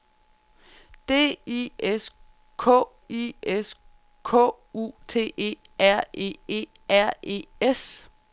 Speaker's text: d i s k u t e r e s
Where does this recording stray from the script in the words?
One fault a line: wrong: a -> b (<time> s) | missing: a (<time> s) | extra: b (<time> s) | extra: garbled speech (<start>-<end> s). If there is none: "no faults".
extra: i s k (3.1 s)
extra: e r e (6.5 s)